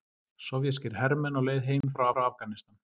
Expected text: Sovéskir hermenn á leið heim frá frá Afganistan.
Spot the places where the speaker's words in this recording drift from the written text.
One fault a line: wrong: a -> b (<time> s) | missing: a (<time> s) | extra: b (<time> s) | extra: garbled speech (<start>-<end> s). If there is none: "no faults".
no faults